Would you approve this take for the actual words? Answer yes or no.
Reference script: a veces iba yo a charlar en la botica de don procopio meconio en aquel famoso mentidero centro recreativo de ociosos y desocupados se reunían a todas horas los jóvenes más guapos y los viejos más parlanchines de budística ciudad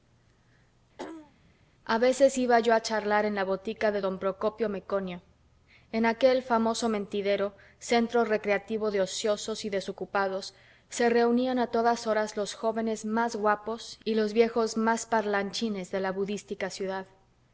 no